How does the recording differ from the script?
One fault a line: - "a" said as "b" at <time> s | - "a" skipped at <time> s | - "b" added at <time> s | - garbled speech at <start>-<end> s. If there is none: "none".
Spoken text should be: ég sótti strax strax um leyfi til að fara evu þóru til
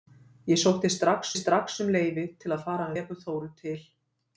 none